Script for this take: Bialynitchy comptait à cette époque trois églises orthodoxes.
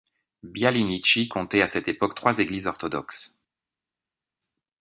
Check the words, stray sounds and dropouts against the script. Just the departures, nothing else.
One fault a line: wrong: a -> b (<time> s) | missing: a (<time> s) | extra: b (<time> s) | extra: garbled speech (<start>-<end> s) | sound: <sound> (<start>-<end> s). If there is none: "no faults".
no faults